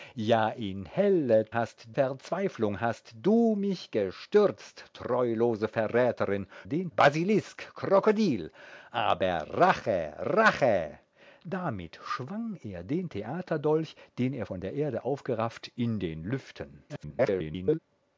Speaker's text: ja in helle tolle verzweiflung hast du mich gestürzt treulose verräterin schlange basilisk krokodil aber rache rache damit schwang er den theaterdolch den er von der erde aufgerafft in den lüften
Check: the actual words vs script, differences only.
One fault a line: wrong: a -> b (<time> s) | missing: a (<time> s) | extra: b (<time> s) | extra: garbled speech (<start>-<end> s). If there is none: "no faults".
wrong: tolle -> hast (1.5 s)
wrong: schlange -> den (6.6 s)
extra: garbled speech (16.9-17.8 s)